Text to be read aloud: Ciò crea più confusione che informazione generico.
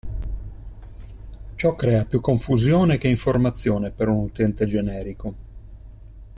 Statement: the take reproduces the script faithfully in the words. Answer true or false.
false